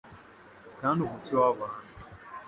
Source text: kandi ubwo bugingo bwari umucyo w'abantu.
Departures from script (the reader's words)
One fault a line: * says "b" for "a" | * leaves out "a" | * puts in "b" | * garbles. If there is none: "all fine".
* leaves out "ubwo bugingo bwari"